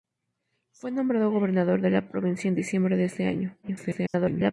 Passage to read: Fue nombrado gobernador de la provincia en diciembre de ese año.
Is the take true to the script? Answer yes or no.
no